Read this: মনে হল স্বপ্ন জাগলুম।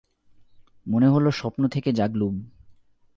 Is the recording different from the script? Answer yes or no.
yes